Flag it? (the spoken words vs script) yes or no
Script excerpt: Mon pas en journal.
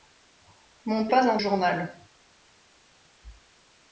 no